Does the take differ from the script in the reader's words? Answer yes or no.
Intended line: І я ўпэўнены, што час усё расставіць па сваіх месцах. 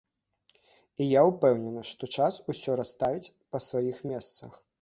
no